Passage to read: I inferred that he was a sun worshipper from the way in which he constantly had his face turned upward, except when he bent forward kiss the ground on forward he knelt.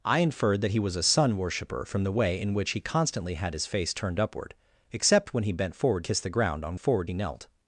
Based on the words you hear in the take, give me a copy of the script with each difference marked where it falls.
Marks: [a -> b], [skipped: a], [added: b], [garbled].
I inferred that he was a sun worshipper from the way in which he constantly had his face turned upward, except when he bent forward kiss the ground on forward he knelt.